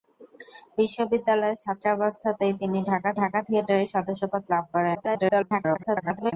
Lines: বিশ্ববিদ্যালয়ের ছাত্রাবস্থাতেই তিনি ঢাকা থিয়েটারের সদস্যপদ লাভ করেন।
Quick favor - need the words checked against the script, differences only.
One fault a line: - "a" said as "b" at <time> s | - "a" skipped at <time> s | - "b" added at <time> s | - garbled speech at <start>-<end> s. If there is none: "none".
- "ঢাকা" added at 3.2 s
- garbled speech at 4.9-6.3 s